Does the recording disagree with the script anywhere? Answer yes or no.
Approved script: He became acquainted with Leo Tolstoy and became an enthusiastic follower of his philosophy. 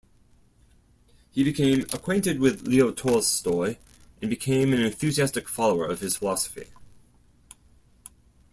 no